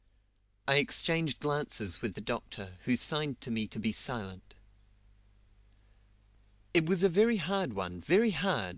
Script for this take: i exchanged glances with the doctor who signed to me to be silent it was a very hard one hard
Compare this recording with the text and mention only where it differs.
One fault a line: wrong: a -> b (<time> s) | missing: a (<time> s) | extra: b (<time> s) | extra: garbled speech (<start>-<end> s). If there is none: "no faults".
extra: very (8.0 s)